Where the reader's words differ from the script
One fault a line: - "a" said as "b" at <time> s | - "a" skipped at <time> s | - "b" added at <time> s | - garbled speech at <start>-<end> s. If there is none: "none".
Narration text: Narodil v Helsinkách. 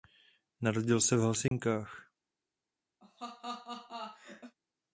- "se" added at 1.0 s